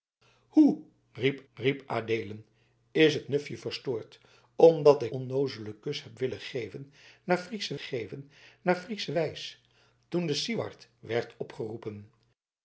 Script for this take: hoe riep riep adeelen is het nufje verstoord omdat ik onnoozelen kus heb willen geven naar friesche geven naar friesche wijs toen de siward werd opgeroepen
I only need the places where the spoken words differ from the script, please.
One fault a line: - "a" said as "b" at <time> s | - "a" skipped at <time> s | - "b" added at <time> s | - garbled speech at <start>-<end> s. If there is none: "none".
none